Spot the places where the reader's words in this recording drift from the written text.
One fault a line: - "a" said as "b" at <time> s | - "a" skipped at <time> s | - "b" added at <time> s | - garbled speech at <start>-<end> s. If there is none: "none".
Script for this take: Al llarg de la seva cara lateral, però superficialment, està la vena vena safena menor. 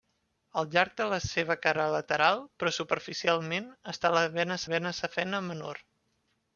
none